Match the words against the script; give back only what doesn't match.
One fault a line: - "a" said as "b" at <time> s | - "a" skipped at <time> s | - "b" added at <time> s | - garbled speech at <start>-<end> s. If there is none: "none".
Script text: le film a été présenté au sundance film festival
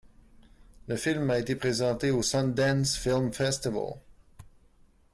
none